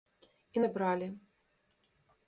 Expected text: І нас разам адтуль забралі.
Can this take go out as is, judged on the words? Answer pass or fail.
fail